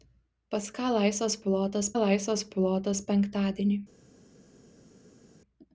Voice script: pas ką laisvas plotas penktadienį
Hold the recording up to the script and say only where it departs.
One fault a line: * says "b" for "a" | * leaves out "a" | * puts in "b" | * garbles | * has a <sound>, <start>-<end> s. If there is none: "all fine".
* puts in "laisvas plotas"